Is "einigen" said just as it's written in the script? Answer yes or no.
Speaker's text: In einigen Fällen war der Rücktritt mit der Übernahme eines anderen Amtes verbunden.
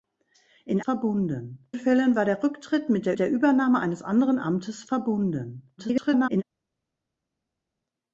no